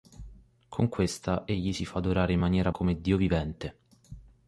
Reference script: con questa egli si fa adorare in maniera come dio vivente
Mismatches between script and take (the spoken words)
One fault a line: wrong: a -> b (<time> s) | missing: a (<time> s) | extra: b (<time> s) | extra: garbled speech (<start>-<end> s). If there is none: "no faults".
no faults